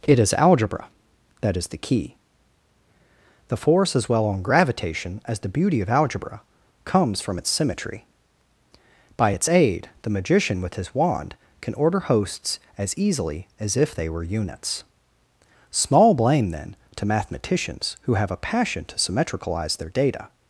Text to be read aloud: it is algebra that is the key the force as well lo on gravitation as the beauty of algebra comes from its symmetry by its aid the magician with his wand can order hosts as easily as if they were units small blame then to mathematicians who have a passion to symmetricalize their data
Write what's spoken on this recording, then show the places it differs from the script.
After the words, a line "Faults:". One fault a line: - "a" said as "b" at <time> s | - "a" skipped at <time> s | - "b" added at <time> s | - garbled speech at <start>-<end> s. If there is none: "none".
it is algebra that is the key the force as well on gravitation as the beauty of algebra comes from its symmetry by its aid the magician with his wand can order hosts as easily as if they were units small blame then to mathematicians who have a passion to symmetricalize their data
Faults:
- "lo" skipped at 4.2 s